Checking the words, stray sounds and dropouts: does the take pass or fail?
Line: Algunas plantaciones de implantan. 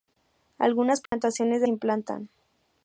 fail